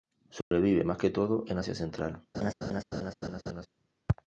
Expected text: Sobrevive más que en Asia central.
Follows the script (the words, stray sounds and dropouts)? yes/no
no